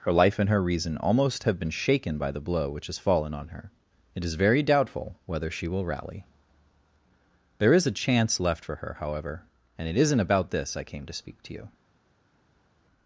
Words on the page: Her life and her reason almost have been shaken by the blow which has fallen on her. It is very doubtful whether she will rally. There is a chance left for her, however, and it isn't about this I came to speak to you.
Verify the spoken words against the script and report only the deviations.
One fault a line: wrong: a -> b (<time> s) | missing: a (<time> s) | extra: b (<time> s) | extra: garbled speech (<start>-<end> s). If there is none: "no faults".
no faults